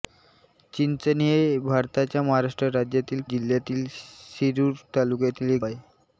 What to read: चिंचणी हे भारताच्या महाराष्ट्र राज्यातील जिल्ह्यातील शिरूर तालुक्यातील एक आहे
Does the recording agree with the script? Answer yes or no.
yes